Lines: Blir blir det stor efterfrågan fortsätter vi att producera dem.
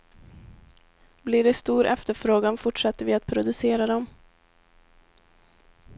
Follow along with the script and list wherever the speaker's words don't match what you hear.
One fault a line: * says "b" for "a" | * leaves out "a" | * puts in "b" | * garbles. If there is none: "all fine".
* leaves out "blir"